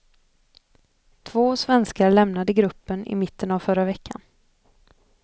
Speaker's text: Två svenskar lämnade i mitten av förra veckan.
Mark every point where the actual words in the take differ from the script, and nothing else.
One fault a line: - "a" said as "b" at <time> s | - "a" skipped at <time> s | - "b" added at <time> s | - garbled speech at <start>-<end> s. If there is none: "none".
- "gruppen" added at 2.5 s